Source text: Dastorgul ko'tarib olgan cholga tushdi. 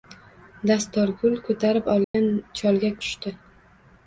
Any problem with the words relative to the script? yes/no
no